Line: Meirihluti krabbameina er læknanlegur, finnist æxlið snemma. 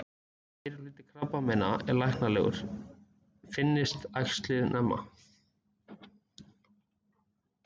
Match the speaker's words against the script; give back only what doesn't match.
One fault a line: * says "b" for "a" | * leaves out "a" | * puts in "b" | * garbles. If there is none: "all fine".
all fine